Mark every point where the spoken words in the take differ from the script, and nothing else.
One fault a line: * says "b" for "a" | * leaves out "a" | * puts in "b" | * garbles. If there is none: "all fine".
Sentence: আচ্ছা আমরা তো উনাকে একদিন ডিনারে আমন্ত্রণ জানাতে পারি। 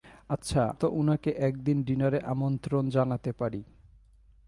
* leaves out "আমরা"